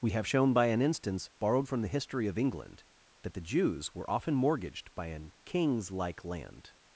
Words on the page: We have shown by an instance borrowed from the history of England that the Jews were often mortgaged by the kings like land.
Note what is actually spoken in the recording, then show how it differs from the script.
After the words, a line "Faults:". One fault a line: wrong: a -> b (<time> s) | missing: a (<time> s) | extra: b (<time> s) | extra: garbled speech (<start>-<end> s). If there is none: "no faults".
We have shown by an instance borrowed from the history of England that the Jews were often mortgaged by an kings like land.
Faults:
wrong: the -> an (5.1 s)